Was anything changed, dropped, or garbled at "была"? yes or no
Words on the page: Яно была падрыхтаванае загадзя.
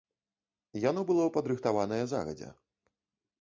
yes